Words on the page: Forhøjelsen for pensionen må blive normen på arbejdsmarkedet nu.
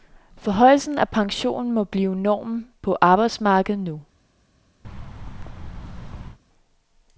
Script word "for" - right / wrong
wrong